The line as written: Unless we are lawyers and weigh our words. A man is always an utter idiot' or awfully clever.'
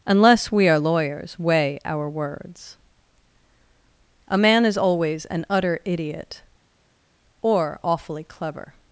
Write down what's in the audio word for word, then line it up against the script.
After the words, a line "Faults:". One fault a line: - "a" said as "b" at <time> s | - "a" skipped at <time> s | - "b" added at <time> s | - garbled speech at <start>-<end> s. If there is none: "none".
Unless we are lawyers weigh our words. A man is always an utter idiot' or awfully clever.'
Faults:
- "and" skipped at 1.4 s